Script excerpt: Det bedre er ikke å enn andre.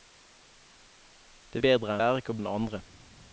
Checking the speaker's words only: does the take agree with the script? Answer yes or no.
yes